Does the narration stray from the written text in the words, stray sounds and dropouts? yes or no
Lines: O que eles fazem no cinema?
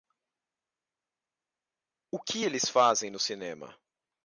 no